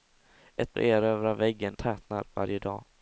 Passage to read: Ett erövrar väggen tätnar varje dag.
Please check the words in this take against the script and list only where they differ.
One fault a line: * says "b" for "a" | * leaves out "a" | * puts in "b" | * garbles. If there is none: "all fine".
all fine